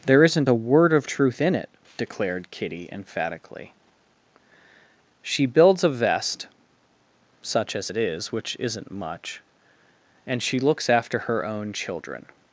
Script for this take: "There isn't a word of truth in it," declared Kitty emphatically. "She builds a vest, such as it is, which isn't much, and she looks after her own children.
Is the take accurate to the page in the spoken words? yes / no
yes